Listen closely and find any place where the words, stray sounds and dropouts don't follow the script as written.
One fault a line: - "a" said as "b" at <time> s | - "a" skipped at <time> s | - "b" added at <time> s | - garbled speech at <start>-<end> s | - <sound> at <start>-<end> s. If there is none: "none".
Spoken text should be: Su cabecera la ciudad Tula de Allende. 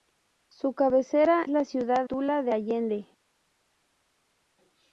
none